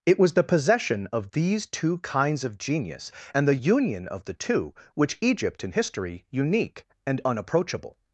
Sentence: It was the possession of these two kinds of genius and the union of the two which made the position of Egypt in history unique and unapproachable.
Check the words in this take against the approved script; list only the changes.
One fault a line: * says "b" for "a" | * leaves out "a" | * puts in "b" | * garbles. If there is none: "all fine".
* leaves out "made the position of"